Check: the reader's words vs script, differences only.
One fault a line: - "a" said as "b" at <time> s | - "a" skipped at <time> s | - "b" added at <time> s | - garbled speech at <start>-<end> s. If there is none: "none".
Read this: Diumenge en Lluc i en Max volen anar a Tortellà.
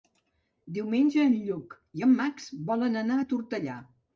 none